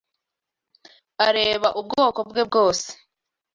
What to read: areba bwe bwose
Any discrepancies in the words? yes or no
yes